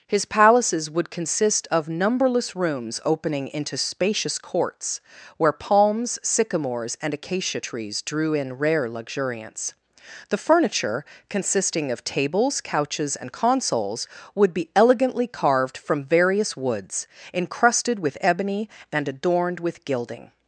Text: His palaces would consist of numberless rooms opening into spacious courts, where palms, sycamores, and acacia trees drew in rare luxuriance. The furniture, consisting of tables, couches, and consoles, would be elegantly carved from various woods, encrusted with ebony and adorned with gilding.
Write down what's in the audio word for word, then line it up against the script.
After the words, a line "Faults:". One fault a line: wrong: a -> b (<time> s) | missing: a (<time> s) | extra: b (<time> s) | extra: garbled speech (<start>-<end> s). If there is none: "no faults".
His palaces would consist of numberless rooms opening into spacious courts, where palms, sycamores, and acacia trees drew in rare luxuriance. The furniture, consisting of tables, couches, and consoles, would be elegantly carved from various woods, encrusted with ebony and adorned with gilding.
Faults:
no faults